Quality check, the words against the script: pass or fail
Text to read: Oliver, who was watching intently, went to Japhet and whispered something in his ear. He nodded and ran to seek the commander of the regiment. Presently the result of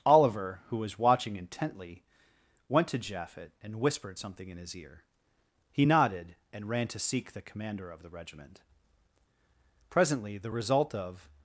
pass